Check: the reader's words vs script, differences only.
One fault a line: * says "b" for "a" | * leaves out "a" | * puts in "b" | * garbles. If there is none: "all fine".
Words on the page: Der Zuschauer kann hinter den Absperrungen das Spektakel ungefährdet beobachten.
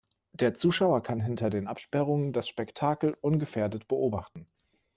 all fine